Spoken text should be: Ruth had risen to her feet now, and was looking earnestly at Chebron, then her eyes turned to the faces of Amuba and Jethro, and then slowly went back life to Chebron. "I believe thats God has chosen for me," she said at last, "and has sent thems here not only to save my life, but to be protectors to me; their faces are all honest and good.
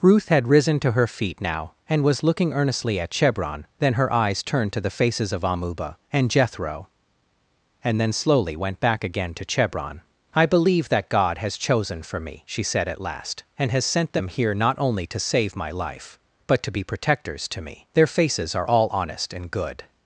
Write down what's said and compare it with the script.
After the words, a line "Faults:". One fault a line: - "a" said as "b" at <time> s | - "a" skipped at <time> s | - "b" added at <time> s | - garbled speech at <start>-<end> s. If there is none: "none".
Ruth had risen to her feet now, and was looking earnestly at Chebron, then her eyes turned to the faces of Amuba and Jethro, and then slowly went back again to Chebron. "I believe that God has chosen for me," she said at last, "and has sent them here not only to save my life, but to be protectors to me; their faces are all honest and good.
Faults:
- "life" said as "again" at 9.0 s
- "thats" said as "that" at 10.9 s
- "thems" said as "them" at 14.1 s